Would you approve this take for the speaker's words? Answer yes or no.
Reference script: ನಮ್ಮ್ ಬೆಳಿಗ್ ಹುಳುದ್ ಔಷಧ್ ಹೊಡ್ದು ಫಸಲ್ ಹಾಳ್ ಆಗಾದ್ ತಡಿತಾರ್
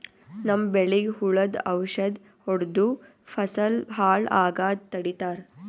yes